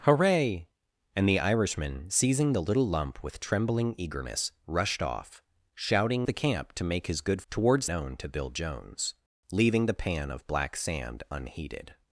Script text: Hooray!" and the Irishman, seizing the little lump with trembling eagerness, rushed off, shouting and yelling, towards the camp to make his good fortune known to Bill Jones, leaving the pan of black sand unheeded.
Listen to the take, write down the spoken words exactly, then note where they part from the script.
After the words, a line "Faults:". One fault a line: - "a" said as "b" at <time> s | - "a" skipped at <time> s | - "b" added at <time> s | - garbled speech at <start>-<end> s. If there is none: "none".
Hooray!" and the Irishman, seizing the little lump with trembling eagerness, rushed off, shouting the camp to make his good towards known to Bill Jones, leaving the pan of black sand unheeded.
Faults:
- "and yelling towards" skipped at 6.3 s
- "fortune" said as "towards" at 7.5 s